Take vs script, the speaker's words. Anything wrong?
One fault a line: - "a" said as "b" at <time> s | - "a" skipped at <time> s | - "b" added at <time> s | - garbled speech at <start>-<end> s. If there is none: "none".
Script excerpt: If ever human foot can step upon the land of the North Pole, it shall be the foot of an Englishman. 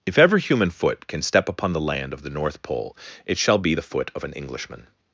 none